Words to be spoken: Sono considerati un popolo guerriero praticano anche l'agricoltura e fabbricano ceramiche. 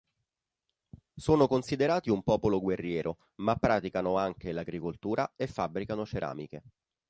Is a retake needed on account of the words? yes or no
yes